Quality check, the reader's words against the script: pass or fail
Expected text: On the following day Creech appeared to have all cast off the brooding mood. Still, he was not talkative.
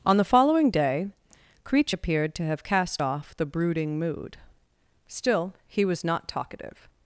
fail